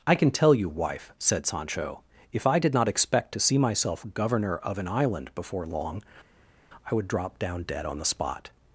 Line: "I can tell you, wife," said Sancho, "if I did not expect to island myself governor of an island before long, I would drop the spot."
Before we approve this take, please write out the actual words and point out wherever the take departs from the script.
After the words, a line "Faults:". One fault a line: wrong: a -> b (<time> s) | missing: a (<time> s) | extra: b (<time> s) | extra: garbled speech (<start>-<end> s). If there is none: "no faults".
"I can tell you, wife," said Sancho, "if I did not expect to see myself governor of an island before long, I would drop down dead on the spot."
Faults:
wrong: island -> see (3.4 s)
extra: down dead on (7.4 s)